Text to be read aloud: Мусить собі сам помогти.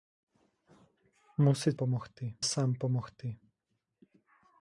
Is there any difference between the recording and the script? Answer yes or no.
yes